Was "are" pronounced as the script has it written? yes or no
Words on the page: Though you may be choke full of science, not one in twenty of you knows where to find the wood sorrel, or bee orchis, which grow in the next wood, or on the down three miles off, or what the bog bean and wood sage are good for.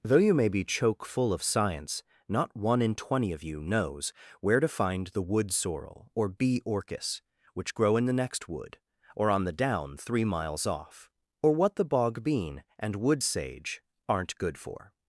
no